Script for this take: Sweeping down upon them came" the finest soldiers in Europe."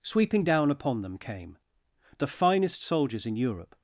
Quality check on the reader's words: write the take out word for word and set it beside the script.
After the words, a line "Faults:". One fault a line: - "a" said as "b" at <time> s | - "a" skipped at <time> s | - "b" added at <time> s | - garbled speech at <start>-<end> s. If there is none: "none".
Sweeping down upon them came" the finest soldiers in Europe."
Faults:
none